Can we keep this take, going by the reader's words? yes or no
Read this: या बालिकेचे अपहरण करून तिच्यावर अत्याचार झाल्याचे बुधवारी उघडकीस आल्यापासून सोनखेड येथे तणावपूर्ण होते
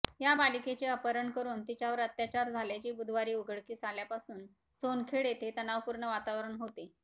no